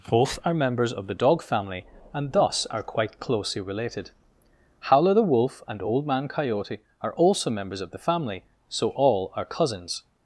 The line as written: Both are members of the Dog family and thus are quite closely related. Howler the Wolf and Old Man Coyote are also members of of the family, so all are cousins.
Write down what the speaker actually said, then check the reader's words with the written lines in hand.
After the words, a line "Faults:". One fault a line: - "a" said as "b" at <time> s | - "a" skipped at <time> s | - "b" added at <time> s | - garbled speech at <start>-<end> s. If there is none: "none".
Both are members of the Dog family and thus are quite closely related. Howler the Wolf and Old Man Coyote are also members of the family, so all are cousins.
Faults:
- "of" skipped at 7.9 s